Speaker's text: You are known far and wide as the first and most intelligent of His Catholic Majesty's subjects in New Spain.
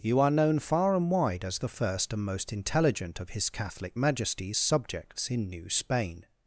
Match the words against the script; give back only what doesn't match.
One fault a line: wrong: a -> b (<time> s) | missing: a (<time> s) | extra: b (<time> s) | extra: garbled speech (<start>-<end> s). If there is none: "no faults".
no faults